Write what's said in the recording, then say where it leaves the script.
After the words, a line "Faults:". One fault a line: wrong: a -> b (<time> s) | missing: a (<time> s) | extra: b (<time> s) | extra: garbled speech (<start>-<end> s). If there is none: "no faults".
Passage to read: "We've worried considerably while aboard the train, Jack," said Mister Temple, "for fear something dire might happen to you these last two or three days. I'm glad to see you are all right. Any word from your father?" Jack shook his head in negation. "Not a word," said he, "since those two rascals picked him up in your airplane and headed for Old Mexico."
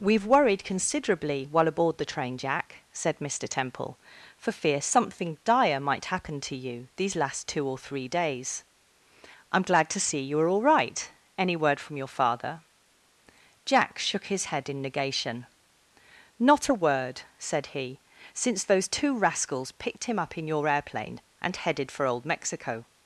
"We've worried considerably while aboard the train, Jack," said Mister Temple, "for fear something dire might happen to you these last two or three days. I'm glad to see you are all right. Any word from your father?" Jack shook his head in negation. "Not a word," said he, "since those two rascals picked him up in your airplane and headed for Old Mexico."
Faults:
no faults